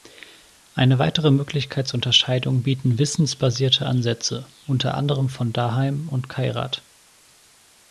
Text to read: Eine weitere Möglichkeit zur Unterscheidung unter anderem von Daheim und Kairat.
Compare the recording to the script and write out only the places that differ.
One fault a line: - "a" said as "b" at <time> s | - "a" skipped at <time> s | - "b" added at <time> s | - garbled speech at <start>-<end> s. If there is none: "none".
- "bieten wissensbasierte Ansätze" added at 2.6 s